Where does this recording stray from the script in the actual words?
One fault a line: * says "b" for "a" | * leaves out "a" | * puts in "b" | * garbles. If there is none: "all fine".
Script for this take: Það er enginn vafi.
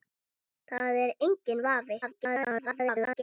* garbles